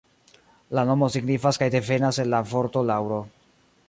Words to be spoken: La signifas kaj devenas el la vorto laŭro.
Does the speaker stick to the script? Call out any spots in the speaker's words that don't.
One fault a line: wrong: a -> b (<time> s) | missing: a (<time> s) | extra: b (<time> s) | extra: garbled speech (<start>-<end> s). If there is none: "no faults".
extra: nomo (0.9 s)